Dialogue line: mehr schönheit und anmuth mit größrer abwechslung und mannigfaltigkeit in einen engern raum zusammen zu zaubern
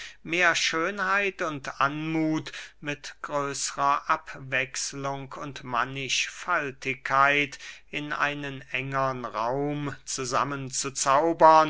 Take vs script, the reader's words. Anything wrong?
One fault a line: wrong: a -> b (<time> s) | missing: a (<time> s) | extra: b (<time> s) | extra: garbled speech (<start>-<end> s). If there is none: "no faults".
no faults